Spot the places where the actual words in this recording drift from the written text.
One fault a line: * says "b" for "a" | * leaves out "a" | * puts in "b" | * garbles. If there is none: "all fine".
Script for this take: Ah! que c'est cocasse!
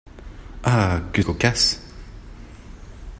* leaves out "c'est"